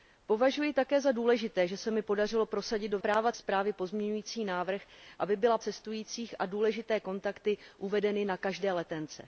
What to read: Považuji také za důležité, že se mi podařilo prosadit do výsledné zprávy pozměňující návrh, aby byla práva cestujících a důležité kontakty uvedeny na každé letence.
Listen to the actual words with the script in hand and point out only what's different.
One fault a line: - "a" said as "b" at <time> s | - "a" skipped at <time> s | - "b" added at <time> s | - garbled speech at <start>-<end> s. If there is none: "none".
- "výsledné" said as "práva" at 3.0 s
- "práva" skipped at 5.6 s